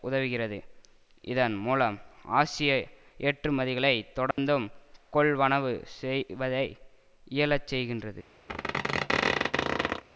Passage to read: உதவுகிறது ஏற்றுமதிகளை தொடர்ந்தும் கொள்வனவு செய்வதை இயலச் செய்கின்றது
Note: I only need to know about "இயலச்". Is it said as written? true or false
true